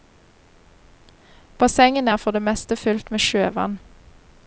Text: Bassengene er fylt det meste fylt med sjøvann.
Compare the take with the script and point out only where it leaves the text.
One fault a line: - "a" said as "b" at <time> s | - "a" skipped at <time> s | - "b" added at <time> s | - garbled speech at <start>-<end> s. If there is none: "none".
- "fylt" said as "for" at 2.2 s